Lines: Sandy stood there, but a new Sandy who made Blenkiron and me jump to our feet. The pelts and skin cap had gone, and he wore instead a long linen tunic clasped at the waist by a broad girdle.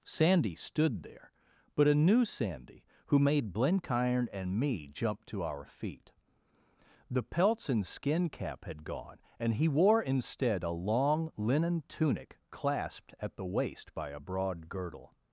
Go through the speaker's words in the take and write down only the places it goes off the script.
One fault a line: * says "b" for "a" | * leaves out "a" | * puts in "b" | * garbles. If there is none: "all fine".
all fine